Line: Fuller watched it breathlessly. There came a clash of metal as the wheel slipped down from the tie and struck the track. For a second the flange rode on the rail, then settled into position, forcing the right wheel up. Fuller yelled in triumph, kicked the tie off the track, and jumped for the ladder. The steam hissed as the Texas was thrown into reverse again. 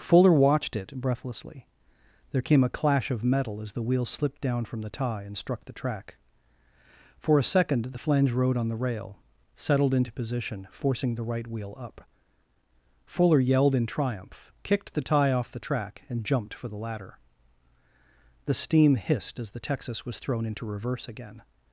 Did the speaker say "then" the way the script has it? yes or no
no